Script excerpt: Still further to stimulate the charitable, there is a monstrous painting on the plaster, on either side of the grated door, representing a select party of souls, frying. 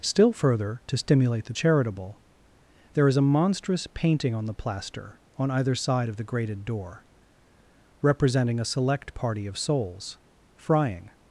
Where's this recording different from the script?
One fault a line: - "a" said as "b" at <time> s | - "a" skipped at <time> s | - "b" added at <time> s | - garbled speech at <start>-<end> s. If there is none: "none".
none